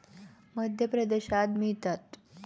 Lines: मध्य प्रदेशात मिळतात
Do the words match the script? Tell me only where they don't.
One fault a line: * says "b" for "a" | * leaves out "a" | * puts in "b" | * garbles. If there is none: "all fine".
all fine